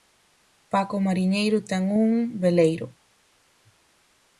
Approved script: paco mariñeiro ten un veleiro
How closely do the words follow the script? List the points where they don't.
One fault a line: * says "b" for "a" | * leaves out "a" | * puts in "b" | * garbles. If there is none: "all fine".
all fine